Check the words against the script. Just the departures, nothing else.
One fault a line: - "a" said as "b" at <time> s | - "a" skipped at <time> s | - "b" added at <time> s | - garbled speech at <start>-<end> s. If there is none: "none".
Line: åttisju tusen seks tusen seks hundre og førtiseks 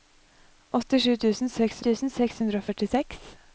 none